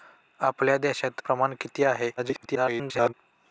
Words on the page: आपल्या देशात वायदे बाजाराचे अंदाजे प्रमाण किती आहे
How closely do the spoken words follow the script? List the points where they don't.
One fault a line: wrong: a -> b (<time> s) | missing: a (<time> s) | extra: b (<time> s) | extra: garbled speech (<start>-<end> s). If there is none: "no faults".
missing: वायदे बाजाराचे अंदाजे (1.2 s)
extra: garbled speech (2.2-3.1 s)